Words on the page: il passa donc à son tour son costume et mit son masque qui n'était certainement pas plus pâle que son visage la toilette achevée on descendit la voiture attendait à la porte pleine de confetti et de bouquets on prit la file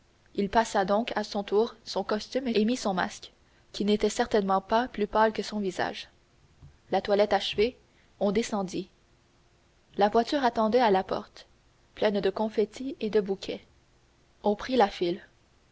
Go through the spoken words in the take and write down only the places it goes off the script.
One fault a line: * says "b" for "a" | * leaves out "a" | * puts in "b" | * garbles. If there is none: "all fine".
all fine